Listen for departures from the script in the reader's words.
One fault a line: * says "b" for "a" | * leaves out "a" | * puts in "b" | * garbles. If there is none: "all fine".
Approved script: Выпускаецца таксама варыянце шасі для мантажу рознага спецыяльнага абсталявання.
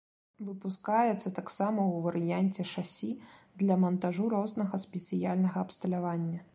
* puts in "ў"